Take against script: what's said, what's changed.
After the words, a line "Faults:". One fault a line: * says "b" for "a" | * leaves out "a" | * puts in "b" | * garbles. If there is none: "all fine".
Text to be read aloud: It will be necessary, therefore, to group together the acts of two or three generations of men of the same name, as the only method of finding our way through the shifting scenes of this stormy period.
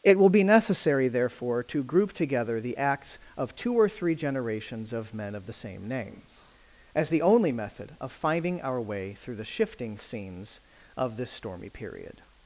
It will be necessary, therefore, to group together the acts of two or three generations of men of the same name, as the only method of finding our way through the shifting scenes of this stormy period.
Faults:
all fine